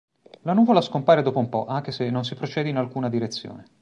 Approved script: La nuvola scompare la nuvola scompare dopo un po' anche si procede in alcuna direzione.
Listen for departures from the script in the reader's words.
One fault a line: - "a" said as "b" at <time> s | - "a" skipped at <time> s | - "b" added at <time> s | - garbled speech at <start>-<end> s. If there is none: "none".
- "la nuvola scompare" skipped at 1.2 s
- "se non" added at 1.9 s